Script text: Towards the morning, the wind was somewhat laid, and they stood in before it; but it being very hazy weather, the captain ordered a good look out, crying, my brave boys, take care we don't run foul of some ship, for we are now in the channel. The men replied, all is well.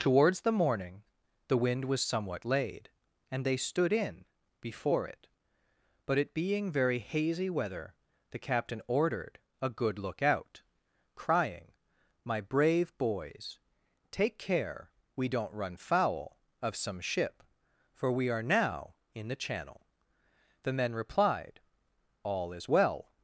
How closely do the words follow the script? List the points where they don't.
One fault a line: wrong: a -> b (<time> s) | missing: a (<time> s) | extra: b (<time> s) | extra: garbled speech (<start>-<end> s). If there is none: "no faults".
no faults